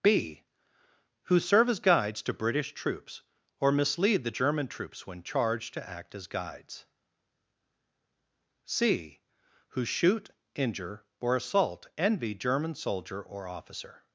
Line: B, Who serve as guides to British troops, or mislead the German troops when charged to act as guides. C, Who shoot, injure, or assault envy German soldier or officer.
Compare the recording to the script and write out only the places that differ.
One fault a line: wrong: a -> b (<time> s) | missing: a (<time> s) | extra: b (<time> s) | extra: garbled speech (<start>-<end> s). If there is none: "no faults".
no faults